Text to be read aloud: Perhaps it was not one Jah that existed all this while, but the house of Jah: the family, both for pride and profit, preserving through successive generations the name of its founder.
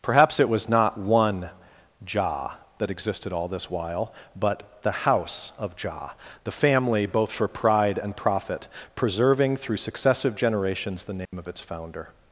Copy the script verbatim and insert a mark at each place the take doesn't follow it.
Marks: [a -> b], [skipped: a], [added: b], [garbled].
Perhaps it was not one Jah that existed all this while, but the house of Jah: the family, both for pride and profit, preserving through successive generations the name of its founder.